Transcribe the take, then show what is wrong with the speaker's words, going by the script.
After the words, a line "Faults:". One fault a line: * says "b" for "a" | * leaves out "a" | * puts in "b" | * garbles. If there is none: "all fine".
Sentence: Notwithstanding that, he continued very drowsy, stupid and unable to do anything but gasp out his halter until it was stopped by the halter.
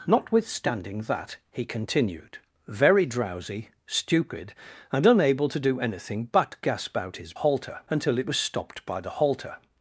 Notwithstanding that, he continued very drowsy, stupid and unable to do anything but gasp out his halter until it was stopped by the halter.
Faults:
all fine